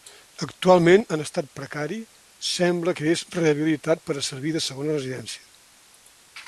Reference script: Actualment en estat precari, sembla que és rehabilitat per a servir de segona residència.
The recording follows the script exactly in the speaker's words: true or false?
true